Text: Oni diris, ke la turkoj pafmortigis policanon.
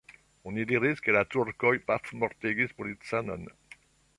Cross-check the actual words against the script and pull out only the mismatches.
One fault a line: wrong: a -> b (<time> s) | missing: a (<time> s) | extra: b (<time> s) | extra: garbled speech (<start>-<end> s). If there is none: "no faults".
no faults